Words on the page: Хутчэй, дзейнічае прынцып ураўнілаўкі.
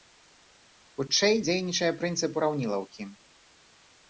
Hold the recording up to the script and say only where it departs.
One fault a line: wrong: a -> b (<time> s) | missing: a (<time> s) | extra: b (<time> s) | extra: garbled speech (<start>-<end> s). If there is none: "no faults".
no faults